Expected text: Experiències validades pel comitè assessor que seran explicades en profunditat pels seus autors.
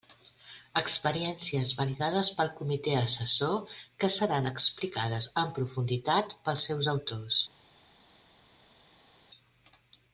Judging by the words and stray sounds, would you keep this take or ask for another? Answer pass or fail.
pass